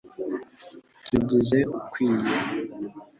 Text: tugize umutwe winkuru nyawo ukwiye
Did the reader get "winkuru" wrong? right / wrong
wrong